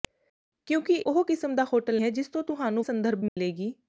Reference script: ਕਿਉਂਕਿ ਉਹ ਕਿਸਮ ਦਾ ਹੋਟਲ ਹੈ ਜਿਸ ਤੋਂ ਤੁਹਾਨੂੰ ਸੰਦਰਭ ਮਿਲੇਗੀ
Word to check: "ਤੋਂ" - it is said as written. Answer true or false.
true